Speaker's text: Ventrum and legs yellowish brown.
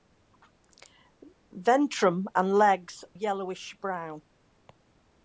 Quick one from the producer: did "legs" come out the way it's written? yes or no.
yes